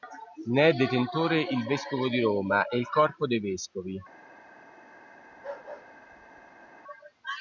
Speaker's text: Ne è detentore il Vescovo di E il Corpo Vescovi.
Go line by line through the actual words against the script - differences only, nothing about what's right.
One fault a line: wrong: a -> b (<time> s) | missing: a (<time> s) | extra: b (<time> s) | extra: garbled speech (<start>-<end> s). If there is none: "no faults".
extra: Roma (2.2 s)
extra: dei (3.3 s)